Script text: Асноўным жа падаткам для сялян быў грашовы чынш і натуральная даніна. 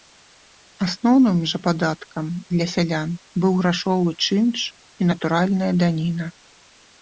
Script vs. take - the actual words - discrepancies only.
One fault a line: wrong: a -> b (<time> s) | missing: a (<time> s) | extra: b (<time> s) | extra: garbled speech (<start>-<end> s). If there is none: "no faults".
no faults